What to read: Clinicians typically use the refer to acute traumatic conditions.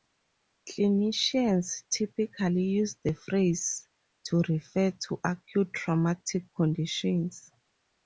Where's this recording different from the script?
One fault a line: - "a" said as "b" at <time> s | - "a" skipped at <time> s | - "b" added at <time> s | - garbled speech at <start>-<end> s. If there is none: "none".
- "phrase to" added at 3.1 s